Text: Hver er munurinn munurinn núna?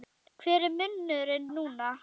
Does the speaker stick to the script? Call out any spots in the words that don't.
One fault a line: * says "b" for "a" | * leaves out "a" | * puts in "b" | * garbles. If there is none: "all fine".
* leaves out "munurinn"